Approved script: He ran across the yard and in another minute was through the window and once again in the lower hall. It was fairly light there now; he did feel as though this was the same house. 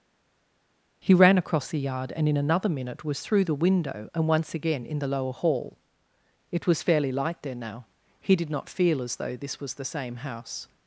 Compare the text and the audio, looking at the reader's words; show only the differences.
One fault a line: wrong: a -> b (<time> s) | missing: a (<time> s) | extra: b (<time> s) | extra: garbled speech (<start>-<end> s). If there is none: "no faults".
extra: not (8.5 s)